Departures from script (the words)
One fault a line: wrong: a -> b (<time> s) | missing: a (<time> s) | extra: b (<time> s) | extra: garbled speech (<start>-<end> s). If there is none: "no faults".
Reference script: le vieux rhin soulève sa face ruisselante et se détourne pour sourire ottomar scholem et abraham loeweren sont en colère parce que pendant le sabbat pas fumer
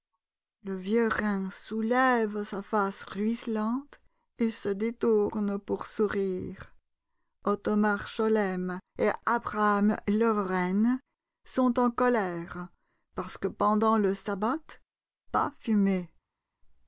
no faults